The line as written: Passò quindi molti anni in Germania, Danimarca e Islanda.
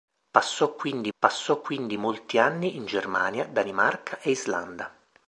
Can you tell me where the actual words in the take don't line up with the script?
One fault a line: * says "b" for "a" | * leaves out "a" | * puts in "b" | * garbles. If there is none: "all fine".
* puts in "passò quindi"